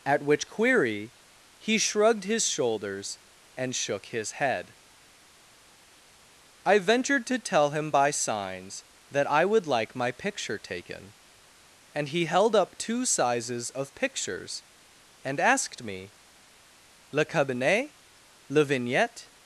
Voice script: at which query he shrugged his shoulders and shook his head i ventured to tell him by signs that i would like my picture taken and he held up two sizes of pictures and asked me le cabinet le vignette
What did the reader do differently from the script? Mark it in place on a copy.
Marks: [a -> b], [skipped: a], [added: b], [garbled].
at which query he shrugged his shoulders and shook his head i ventured to tell him by signs that i would like my picture taken and he held up two sizes of pictures and asked me le cabinet le vignette